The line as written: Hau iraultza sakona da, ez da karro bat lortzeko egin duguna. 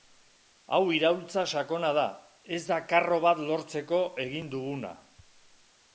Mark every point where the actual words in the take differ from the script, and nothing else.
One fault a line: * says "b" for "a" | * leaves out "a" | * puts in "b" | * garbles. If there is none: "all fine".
all fine